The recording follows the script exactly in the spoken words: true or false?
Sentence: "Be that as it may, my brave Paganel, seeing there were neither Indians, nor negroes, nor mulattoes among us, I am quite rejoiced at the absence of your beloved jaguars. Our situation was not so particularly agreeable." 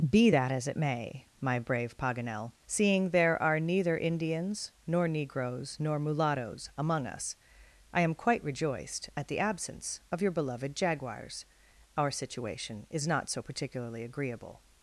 false